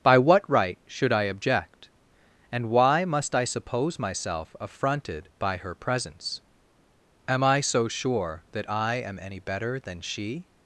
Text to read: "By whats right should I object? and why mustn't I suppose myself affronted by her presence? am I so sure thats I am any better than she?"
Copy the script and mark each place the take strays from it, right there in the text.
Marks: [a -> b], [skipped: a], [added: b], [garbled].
"By [whats -> what] right should I object? and why [mustn't -> must] I suppose myself affronted by her presence? am I so sure [thats -> that] I am any better than she?"